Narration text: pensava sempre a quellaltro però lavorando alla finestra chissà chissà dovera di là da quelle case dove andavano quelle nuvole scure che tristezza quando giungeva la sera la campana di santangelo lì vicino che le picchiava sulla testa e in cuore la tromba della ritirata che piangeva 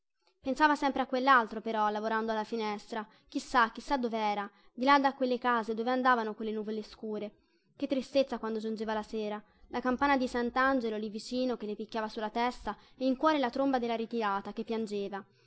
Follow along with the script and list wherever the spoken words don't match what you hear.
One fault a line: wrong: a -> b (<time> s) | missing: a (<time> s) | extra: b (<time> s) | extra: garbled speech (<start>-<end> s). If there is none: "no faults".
no faults